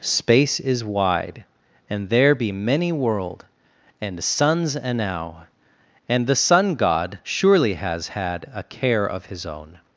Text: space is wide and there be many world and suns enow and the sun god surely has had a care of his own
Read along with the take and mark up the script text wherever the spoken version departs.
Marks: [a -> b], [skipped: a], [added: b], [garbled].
space is wide and there be many world and suns enow and the sun god surely has had a care of his own